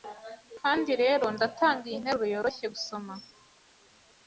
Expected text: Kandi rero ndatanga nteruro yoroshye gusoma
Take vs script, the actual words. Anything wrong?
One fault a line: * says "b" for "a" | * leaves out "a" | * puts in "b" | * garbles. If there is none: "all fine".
* puts in "iyi"